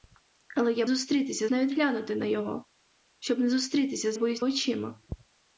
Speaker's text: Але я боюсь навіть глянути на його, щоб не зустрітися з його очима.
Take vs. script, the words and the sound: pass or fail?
fail